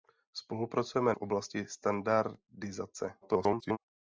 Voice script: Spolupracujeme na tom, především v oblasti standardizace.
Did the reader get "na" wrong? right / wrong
wrong